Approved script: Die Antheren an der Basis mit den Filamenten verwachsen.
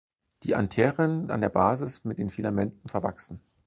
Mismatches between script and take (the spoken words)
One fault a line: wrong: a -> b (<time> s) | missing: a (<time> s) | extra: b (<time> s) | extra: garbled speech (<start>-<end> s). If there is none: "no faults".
no faults